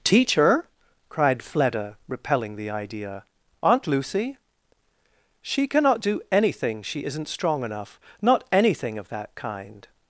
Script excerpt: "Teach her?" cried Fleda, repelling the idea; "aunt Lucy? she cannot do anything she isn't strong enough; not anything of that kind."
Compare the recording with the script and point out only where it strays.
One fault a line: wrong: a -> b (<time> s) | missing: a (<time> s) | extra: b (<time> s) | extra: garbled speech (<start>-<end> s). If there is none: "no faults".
no faults